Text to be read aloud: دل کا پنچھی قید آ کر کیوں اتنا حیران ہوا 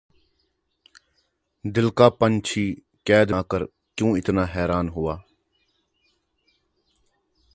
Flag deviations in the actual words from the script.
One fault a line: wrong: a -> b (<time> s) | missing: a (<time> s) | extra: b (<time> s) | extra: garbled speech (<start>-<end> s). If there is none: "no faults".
no faults